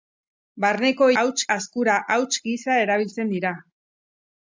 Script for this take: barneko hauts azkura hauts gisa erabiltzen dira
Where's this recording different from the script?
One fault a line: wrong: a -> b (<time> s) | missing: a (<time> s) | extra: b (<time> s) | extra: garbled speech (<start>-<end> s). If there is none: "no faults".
no faults